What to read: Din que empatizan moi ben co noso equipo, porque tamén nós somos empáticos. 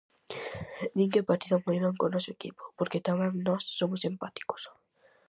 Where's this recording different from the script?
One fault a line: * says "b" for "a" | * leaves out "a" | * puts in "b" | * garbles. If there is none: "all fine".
all fine